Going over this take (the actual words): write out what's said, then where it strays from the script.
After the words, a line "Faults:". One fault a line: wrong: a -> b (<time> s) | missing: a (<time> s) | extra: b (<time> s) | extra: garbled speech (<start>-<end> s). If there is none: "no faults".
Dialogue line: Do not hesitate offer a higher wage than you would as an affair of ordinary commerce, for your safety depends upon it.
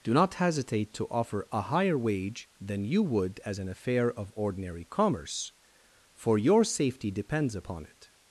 Do not hesitate to offer a higher wage than you would as an affair of ordinary commerce, for your safety depends upon it.
Faults:
extra: to (0.9 s)